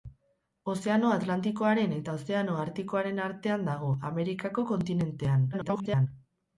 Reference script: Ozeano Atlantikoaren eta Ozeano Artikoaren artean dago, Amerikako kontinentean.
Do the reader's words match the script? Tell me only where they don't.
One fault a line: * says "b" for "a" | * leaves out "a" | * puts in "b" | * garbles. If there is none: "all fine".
* garbles